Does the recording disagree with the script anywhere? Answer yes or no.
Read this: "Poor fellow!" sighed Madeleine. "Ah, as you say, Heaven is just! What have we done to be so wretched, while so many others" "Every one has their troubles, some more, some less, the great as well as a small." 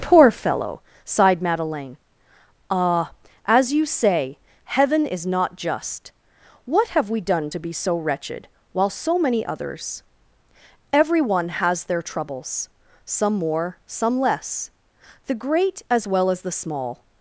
yes